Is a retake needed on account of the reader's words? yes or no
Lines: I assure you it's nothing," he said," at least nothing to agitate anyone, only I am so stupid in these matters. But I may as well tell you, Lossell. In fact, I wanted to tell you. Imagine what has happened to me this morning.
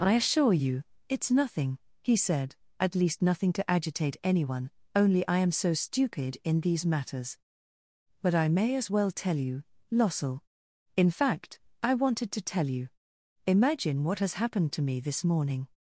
no